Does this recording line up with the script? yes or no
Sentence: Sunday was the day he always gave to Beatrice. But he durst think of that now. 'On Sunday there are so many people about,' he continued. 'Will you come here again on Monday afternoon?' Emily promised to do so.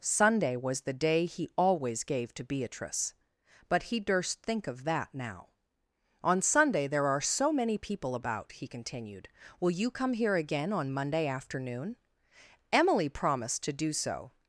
yes